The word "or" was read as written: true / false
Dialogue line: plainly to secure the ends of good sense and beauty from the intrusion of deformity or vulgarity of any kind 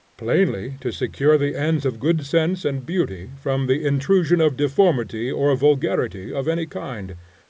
true